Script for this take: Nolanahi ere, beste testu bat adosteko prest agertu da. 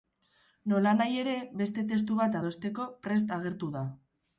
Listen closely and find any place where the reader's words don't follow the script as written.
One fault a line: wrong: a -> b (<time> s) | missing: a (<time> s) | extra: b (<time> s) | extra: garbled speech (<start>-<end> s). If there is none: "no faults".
no faults